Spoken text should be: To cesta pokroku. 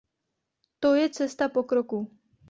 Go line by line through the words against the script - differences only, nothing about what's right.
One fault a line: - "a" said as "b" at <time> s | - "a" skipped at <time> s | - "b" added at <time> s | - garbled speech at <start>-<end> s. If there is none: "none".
- "je" added at 0.9 s